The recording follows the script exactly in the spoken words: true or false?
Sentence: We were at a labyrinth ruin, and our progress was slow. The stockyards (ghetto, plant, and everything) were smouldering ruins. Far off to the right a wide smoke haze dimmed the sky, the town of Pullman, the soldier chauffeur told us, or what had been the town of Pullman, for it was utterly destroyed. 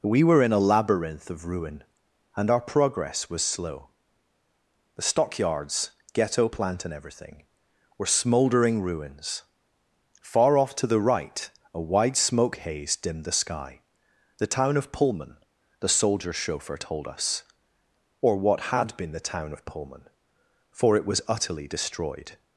false